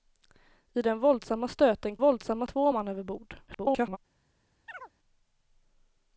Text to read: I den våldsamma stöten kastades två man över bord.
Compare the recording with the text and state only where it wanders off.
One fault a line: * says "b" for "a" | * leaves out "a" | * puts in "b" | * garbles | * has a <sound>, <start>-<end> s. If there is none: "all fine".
* says "våldsamma" for "kastades"
* garbles
* has a chirp, 4.7-4.9 s